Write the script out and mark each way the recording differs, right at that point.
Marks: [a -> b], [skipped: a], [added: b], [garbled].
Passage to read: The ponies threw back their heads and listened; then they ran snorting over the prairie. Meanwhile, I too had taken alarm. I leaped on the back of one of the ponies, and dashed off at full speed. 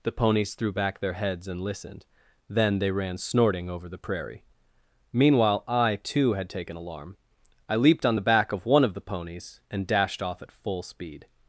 The ponies threw back their heads and listened; then they ran snorting over the prairie. Meanwhile, I too had taken alarm. I leaped on the back of one of the ponies, and dashed off at full speed.